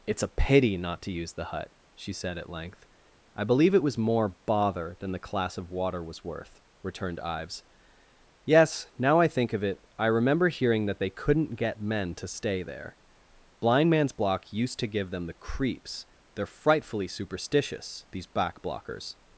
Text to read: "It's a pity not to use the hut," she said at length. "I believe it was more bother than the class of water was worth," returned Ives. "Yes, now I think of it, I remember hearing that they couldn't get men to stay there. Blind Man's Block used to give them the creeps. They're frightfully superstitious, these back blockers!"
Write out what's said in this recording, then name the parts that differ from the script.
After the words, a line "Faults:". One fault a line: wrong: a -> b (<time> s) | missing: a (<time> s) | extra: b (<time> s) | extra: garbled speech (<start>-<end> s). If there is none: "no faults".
"It's a pity not to use the hut," she said at length. "I believe it was more bother than the class of water was worth," returned Ives. "Yes, now I think of it, I remember hearing that they couldn't get men to stay there. Blind Man's Block used to give them the creeps. They're frightfully superstitious, these back blockers!"
Faults:
no faults